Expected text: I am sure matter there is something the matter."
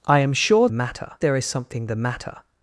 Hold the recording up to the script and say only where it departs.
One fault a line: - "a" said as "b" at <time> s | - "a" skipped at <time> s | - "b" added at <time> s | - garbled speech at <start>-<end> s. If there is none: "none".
none